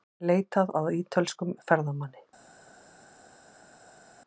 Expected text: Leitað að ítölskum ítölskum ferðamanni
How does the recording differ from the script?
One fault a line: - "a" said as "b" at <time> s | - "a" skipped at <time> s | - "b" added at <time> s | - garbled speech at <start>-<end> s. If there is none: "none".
- "ítölskum" skipped at 1.5 s